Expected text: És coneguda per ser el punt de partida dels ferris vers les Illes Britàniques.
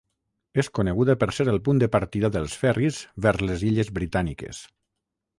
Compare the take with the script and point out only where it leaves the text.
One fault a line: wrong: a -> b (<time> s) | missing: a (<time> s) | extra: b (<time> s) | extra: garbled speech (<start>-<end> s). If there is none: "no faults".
no faults